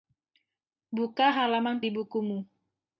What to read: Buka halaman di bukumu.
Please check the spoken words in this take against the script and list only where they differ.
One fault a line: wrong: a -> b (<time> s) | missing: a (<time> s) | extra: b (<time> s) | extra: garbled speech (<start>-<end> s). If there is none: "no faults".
no faults